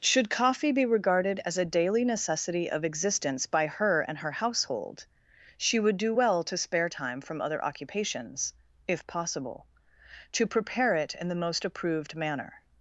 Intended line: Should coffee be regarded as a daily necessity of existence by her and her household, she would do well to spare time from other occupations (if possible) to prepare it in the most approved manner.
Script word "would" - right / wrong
right